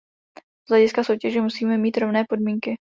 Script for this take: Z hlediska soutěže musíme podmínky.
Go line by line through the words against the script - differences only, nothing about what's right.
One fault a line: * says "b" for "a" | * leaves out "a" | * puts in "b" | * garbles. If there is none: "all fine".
* puts in "mít rovné"